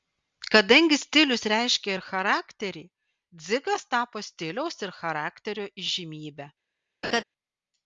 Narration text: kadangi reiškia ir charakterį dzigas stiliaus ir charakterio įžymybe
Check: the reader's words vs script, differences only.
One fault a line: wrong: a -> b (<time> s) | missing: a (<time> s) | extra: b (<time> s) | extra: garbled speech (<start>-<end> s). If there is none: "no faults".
extra: stilius (1.0 s)
extra: tapo (4.0 s)